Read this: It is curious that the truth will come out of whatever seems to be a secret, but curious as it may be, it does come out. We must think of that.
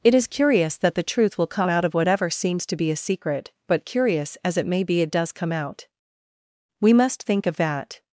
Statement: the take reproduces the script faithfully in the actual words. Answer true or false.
true